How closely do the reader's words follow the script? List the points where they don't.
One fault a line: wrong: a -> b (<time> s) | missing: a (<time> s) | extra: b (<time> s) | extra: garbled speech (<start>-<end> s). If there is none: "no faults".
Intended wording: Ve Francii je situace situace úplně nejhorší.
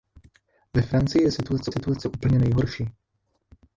no faults